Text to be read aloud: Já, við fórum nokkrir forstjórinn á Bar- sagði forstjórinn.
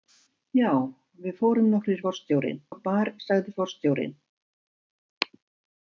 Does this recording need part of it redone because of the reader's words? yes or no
no